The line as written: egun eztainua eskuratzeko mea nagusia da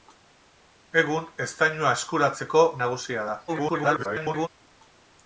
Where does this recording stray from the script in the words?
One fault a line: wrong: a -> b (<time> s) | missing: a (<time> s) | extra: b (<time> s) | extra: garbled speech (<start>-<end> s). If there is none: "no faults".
missing: mea (2.7 s)
extra: garbled speech (3.5-4.5 s)